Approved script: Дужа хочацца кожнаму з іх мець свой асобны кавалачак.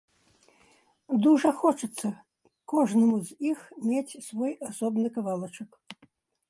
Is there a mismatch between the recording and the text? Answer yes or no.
no